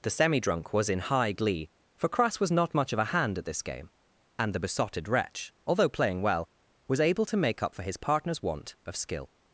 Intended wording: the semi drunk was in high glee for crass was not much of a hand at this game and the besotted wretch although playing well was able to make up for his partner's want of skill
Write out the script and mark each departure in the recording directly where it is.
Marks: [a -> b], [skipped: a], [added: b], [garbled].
the semi drunk was in high glee for crass was not much of a hand at this game and the besotted wretch although playing well was able to make up for his partner's want of skill